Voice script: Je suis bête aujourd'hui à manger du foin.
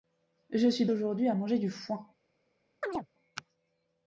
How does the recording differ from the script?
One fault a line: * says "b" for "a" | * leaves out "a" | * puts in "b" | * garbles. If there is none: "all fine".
* leaves out "bête"